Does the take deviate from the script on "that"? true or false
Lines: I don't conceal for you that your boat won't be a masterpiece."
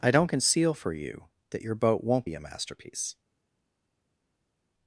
false